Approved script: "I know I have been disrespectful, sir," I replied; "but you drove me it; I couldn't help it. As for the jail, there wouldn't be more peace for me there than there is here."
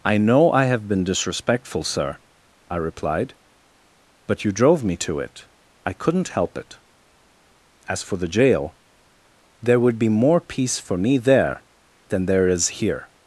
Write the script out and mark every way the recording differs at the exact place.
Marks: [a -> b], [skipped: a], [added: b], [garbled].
"I know I have been disrespectful, sir," I replied; "but you drove me [added: to] it; I couldn't help it. As for the jail, there [wouldn't -> would] be more peace for me there than there is here."